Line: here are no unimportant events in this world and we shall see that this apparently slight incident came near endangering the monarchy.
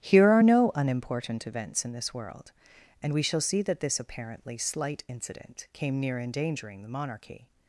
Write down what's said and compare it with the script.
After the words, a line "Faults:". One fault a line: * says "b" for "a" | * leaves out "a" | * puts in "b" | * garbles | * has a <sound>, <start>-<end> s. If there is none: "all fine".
here are no unimportant events in this world and we shall see that this apparently slight incident came near endangering the monarchy.
Faults:
all fine